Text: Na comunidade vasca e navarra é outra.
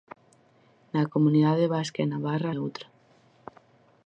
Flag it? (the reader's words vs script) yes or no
no